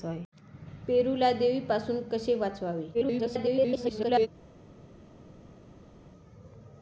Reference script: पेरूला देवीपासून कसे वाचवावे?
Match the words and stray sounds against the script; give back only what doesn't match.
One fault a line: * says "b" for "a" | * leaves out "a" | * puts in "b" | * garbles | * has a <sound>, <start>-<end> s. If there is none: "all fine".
* garbles